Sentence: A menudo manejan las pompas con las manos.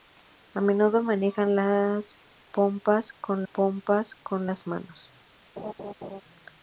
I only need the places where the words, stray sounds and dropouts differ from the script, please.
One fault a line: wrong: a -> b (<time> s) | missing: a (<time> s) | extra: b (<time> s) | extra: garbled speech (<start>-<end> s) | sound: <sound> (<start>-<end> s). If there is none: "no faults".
extra: pompas con (3.5 s)
sound: laugh (5.6-6.2 s)